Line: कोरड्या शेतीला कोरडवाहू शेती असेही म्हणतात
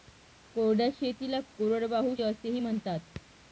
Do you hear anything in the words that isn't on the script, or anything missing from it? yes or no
yes